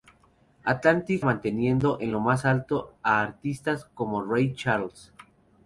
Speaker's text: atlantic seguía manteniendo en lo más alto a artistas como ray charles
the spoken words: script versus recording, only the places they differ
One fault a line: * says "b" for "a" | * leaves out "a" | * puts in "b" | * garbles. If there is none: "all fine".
* leaves out "seguía"